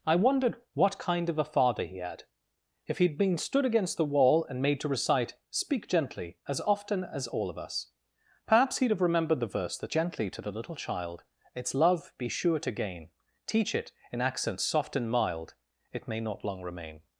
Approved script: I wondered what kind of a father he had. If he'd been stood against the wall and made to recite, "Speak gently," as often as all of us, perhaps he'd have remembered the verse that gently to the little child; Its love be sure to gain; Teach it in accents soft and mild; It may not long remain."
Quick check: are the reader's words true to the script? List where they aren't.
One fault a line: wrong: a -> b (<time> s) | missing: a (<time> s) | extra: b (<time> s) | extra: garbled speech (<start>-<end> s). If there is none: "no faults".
no faults